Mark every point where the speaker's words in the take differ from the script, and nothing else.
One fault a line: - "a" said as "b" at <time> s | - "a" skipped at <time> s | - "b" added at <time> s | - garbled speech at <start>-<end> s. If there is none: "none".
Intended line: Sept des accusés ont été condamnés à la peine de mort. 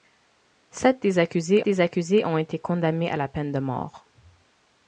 - "des accusés" added at 1.7 s